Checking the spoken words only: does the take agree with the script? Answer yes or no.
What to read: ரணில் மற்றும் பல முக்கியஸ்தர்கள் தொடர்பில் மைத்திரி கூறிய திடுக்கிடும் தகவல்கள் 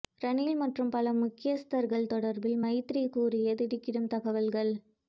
yes